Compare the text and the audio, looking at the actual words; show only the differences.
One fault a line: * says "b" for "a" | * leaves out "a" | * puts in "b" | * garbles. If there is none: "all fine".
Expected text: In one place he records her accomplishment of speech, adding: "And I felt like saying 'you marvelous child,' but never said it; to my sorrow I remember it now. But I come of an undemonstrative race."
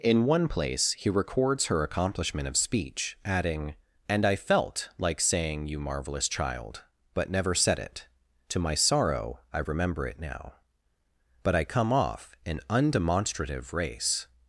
* says "off" for "of"